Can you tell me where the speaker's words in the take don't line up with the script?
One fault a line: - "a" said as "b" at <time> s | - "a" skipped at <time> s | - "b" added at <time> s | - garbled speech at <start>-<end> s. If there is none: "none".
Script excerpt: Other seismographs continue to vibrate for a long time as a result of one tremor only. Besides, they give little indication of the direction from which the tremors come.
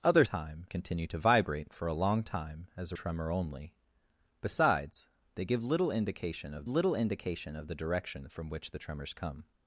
- "seismographs" said as "time" at 0.2 s
- "result of one" skipped at 3.0 s
- "little indication of" added at 6.7 s